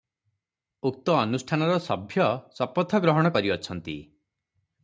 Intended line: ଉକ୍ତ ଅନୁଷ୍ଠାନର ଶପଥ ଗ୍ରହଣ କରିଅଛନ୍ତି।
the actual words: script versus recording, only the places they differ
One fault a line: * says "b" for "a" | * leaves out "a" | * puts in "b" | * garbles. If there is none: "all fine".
* puts in "ସଭ୍ୟ"